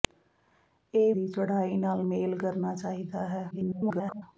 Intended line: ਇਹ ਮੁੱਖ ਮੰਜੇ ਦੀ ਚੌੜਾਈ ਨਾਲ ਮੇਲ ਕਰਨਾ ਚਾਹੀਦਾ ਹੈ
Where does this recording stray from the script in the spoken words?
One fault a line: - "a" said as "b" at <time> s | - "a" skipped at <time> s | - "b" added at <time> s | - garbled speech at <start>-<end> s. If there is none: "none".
- "ਮੁੱਖ ਮੰਜੇ" skipped at 1.1 s
- garbled speech at 3.5-4.2 s